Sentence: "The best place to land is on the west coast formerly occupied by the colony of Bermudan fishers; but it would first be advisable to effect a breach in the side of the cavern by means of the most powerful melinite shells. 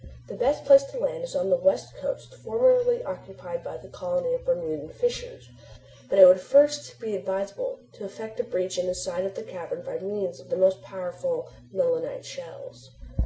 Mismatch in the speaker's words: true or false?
false